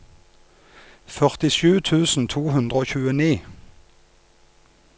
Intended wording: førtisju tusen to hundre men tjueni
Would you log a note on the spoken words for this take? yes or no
yes